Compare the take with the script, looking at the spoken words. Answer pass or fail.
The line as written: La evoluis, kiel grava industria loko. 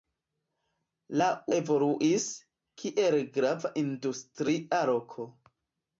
pass